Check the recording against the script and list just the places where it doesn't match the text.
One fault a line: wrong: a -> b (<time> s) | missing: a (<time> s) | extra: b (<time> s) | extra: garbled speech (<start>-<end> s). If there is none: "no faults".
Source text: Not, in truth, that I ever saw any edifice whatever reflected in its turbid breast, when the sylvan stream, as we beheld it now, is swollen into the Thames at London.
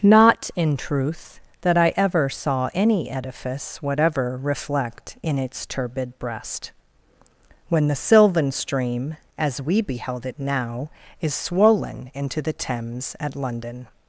wrong: reflected -> reflect (4.4 s)